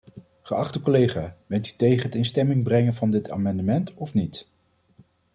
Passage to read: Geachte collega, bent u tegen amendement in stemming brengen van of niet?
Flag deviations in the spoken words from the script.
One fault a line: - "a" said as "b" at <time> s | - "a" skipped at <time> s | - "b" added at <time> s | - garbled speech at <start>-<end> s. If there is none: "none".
- "amendement" said as "het" at 2.0 s
- "dit amendement" added at 3.1 s